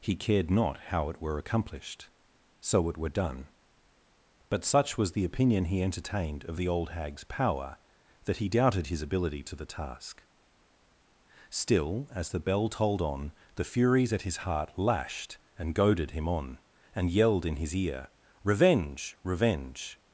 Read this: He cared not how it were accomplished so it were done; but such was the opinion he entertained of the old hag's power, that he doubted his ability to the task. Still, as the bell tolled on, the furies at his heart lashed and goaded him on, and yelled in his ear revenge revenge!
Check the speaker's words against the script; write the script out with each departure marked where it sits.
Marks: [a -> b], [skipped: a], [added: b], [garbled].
He cared not how it were accomplished so it were done; but such was the opinion he entertained of the old hag's power, that he doubted his ability to the task. Still, as the bell tolled on, the furies at his heart lashed and goaded him on, and yelled in his ear revenge revenge!